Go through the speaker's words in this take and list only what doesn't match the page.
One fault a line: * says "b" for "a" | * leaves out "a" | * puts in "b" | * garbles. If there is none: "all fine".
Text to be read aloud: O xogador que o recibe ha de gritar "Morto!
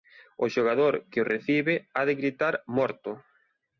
all fine